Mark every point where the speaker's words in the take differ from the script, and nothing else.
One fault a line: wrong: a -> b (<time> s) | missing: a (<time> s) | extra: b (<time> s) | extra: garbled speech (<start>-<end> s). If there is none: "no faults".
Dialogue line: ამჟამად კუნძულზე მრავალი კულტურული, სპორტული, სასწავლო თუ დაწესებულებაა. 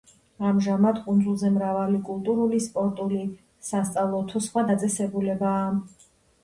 extra: სხვა (4.5 s)